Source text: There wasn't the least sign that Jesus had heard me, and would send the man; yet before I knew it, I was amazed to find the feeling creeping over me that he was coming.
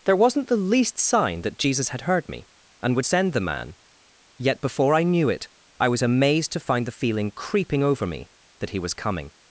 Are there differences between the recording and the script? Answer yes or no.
no